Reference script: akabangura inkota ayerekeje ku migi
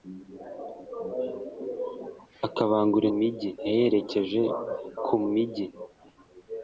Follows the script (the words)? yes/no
no